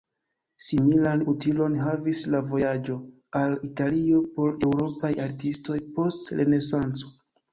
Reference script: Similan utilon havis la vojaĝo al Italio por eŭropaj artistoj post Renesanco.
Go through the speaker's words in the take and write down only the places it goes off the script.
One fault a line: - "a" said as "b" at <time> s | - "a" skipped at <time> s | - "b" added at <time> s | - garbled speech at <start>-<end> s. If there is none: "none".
none